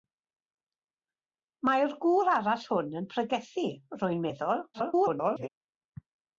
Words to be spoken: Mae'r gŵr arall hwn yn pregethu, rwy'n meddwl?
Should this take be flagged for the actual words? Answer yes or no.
yes